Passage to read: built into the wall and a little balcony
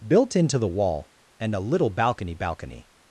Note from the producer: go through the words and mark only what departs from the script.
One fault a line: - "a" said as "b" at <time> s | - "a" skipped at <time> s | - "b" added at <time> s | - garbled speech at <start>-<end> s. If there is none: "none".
- "balcony" added at 2.3 s